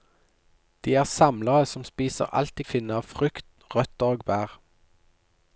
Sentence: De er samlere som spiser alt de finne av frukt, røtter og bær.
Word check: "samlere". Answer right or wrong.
right